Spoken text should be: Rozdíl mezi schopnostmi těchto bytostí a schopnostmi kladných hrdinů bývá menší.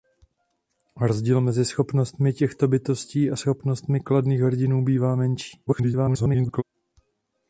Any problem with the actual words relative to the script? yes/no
yes